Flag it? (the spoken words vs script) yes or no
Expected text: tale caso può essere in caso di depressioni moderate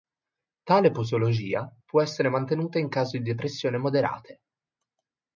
yes